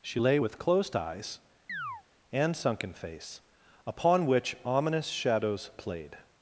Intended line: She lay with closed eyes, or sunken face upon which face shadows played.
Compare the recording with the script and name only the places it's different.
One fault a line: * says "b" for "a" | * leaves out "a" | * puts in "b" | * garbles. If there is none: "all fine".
* says "and" for "or"
* says "ominous" for "face"